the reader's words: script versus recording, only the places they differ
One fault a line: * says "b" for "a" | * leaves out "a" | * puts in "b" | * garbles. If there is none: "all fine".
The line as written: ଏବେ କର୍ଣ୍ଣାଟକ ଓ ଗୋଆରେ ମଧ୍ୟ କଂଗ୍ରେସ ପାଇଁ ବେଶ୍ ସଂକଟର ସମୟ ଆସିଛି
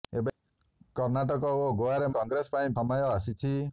* leaves out "ମଧ୍ୟ"
* leaves out "ବେଶ୍ ସଂକଟର"